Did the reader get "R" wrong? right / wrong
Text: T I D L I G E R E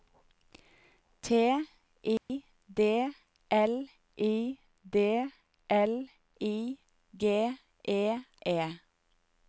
wrong